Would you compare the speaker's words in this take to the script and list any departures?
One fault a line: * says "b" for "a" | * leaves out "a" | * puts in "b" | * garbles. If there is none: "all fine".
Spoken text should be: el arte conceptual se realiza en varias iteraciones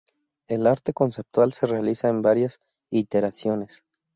all fine